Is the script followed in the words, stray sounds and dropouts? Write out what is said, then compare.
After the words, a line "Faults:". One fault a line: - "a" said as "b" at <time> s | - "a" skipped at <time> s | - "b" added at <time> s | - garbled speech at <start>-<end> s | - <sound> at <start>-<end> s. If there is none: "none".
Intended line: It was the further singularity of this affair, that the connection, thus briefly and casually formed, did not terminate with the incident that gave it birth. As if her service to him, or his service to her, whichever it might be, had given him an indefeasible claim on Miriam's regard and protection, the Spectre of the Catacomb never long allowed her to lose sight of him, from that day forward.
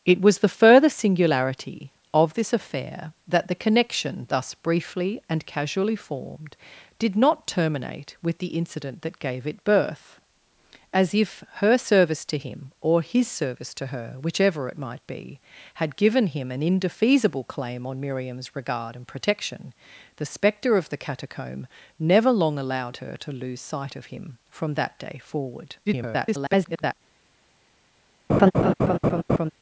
It was the further singularity of this affair, that the connection, thus briefly and casually formed, did not terminate with the incident that gave it birth. As if her service to him, or his service to her, whichever it might be, had given him an indefeasible claim on Miriam's regard and protection, the Spectre of the Catacomb never long allowed her to lose sight of him, from that day forward. [garbled]
Faults:
- garbled speech at 25.9-26.9 s
- laugh at 28.3-29.5 s